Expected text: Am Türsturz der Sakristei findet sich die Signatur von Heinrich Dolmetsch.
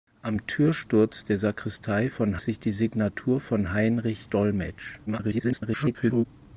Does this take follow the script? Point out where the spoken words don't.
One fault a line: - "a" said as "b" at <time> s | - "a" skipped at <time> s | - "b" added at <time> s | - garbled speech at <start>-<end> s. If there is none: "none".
- "findet" said as "von" at 2.1 s
- garbled speech at 5.1-6.3 s